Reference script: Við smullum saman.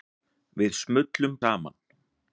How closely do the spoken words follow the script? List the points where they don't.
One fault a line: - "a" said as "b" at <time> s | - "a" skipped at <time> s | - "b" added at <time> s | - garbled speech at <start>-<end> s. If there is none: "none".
none